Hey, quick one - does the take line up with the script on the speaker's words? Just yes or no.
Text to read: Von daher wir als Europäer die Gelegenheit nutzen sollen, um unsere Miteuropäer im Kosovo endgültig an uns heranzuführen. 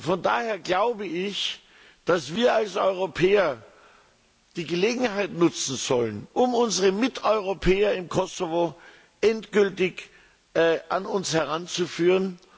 no